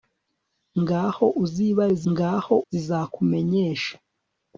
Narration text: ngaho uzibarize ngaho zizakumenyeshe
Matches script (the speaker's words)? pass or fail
pass